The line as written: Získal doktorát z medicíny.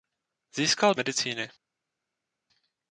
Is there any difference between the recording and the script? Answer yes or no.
yes